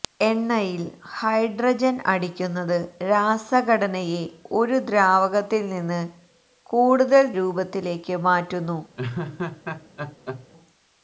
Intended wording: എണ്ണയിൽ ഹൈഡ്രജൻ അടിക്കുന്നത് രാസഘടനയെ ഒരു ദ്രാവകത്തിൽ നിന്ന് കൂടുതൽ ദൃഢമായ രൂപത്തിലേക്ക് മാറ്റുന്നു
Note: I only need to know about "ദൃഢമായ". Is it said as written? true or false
false